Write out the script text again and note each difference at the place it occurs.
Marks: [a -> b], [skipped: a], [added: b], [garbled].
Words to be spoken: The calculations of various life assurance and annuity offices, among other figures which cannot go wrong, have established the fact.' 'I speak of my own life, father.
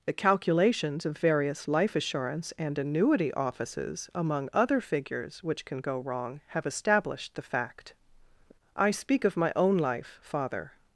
The calculations of various life assurance and annuity offices, among other figures which [cannot -> can] go wrong, have established the fact.' 'I speak of my own life, father.